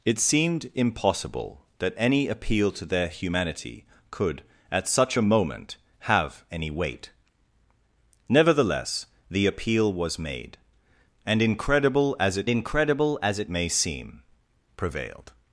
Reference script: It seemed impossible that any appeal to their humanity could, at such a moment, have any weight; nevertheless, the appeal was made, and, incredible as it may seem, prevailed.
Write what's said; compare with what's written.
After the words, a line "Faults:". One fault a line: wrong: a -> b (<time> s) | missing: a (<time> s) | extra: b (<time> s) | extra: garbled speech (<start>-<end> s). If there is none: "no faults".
It seemed impossible that any appeal to their humanity could, at such a moment, have any weight; nevertheless, the appeal was made, and, incredible as it incredible as it may seem, prevailed.
Faults:
extra: incredible as it (12.5 s)